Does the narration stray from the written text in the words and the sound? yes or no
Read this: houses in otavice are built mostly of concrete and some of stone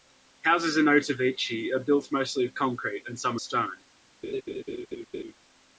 yes